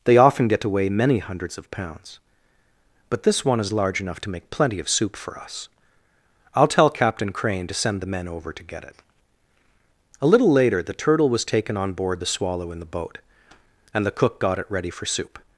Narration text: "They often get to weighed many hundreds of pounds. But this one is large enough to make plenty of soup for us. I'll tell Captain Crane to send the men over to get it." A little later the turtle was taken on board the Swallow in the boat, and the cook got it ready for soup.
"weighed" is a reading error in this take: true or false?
true